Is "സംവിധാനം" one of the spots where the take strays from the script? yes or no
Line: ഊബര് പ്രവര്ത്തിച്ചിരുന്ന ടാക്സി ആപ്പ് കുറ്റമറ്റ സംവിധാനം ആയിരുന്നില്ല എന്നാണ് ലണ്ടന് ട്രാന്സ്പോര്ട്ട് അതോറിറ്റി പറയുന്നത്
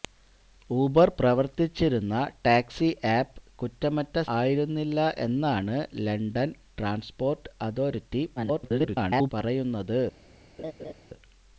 yes